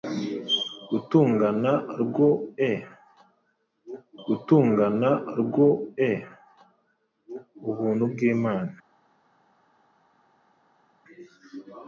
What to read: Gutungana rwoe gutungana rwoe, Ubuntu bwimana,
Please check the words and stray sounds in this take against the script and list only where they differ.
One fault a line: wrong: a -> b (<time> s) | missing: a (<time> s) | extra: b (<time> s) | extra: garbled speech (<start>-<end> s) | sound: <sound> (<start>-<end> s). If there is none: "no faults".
no faults